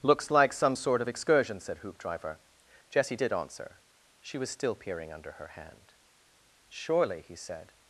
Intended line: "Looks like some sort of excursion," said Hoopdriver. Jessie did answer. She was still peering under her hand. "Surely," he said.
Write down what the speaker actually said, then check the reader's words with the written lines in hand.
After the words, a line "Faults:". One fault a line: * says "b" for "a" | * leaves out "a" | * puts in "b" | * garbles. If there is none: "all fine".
"Looks like some sort of excursion," said Hoopdriver. Jessie did answer. She was still peering under her hand. "Surely," he said.
Faults:
all fine